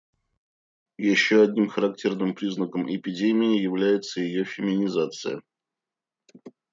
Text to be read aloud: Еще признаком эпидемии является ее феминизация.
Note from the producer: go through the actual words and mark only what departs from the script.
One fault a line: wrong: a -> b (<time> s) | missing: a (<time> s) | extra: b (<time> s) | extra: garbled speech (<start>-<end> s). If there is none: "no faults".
extra: одним характерным (1.4 s)